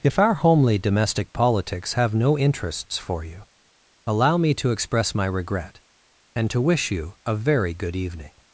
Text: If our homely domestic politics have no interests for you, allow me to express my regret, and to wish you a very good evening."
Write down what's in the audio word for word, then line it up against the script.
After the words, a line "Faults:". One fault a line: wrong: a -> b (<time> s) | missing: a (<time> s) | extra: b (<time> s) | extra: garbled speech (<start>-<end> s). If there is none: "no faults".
If our homely domestic politics have no interests for you, allow me to express my regret, and to wish you a very good evening."
Faults:
no faults